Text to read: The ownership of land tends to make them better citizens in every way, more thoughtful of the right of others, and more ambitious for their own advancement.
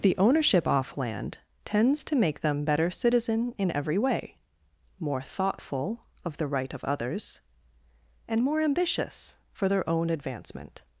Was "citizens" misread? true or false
true